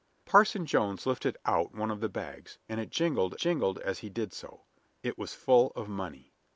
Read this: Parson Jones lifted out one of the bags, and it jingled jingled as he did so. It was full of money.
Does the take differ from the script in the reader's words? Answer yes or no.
no